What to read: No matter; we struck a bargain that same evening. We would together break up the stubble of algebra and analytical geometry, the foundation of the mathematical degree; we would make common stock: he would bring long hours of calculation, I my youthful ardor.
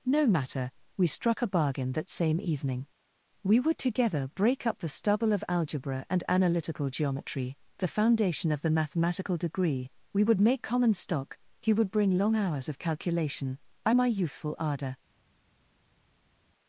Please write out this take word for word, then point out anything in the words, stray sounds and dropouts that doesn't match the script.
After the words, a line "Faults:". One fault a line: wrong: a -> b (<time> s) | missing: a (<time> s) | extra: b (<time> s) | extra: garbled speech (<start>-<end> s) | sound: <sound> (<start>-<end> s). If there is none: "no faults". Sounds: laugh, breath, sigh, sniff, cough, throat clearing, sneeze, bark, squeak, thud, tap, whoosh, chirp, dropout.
No matter; we struck a bargain that same evening. We would together break up the stubble of algebra and analytical geometry, the foundation of the mathematical degree; we would make common stock: he would bring long hours of calculation, I my youthful ardor.
Faults:
no faults